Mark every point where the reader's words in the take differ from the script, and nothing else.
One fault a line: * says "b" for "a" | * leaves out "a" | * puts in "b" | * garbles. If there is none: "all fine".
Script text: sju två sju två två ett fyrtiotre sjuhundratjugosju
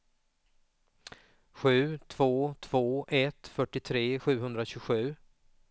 * leaves out "sju två"